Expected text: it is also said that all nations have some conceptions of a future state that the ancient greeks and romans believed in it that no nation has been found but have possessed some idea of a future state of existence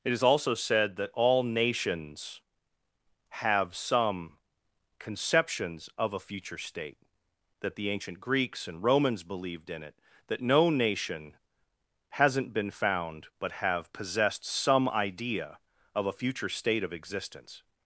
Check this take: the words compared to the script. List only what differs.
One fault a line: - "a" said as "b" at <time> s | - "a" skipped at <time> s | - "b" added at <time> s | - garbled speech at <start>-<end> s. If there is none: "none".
- "has" said as "hasn't" at 12.2 s